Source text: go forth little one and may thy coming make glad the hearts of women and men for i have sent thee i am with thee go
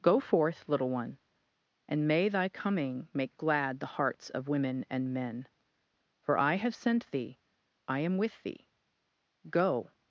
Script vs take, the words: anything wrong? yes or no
no